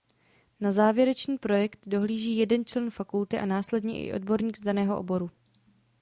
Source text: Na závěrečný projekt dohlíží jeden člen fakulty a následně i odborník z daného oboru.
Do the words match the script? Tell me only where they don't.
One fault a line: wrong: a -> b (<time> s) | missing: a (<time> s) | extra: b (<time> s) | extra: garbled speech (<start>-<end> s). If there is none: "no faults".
no faults